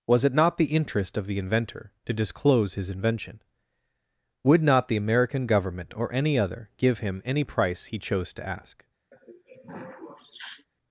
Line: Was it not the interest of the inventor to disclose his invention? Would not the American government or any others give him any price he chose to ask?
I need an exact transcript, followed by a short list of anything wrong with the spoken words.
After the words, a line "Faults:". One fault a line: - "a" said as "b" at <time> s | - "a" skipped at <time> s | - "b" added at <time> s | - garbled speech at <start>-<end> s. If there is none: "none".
Was it not the interest of the inventor to disclose his invention? Would not the American government or any other give him any price he chose to ask?
Faults:
- "others" said as "other" at 6.4 s